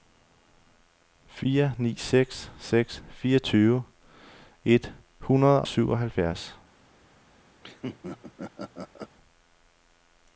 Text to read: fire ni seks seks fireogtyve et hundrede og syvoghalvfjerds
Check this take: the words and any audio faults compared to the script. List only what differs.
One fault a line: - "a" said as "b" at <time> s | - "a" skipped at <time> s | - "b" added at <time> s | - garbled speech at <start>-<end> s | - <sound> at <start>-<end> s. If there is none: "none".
- "og" skipped at 5.6 s
- laugh at 7.6-9.2 s